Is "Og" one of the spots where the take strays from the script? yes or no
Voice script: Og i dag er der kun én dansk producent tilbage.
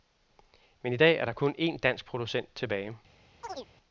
yes